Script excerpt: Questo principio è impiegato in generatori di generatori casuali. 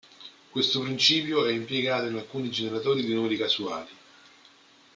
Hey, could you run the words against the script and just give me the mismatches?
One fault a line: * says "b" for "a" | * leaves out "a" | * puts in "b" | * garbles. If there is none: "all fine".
* puts in "alcuni"
* says "numeri" for "generatori"